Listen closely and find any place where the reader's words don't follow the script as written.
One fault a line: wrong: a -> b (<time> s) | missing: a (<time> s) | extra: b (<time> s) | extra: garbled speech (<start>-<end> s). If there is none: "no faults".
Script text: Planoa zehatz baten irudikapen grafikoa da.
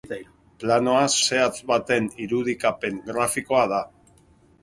no faults